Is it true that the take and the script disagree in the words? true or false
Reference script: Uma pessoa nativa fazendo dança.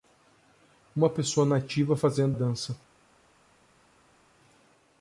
false